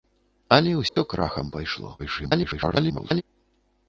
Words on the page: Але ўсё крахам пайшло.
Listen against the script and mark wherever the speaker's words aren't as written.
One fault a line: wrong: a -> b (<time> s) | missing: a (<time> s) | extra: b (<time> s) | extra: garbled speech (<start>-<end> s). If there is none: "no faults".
extra: garbled speech (2.0-3.2 s)